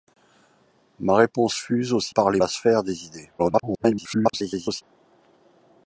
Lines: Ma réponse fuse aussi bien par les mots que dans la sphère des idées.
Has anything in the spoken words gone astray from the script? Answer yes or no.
yes